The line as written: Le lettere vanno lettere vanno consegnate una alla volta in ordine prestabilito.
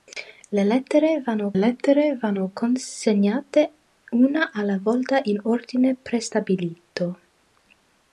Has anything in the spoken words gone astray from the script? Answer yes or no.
no